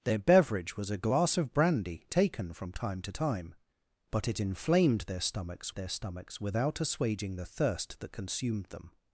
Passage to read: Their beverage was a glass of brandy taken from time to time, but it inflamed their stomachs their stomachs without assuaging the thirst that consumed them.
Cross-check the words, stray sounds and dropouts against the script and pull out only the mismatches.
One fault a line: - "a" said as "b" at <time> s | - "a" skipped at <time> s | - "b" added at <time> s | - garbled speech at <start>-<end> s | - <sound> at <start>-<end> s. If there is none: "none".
none